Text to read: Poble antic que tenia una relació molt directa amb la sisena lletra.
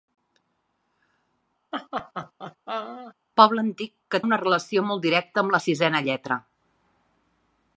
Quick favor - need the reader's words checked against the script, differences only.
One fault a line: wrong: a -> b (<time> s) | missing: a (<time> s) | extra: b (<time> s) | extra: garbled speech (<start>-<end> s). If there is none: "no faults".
missing: tenia (4.2 s)